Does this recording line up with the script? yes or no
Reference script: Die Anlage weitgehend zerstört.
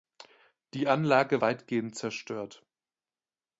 yes